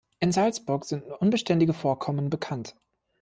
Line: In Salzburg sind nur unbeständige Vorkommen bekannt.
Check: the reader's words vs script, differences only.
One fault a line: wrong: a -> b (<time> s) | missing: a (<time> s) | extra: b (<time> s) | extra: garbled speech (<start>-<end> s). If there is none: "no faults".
no faults